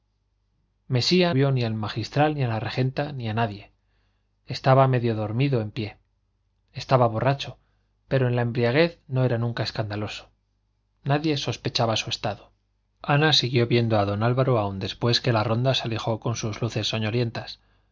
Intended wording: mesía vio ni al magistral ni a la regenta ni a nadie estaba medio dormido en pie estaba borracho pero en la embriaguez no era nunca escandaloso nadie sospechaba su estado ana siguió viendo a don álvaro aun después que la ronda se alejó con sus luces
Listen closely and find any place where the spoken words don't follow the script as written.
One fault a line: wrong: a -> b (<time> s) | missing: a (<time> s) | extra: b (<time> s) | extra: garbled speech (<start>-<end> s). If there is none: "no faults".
no faults